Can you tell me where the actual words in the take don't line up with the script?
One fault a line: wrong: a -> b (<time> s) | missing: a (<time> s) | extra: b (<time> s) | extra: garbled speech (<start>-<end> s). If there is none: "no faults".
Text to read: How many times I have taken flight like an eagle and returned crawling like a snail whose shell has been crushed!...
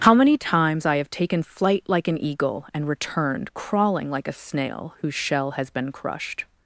no faults